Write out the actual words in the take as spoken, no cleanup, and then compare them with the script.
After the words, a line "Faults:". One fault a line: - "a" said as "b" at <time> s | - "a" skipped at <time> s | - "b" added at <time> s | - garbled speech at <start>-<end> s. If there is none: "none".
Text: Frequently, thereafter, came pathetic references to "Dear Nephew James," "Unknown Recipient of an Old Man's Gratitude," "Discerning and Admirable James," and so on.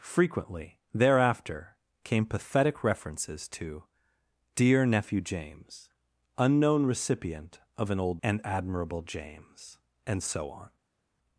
Frequently, thereafter, came pathetic references to "Dear Nephew James," "Unknown Recipient of an Old And Admirable James," and so on.
Faults:
- "Man's Gratitude Discerning" skipped at 8.2 s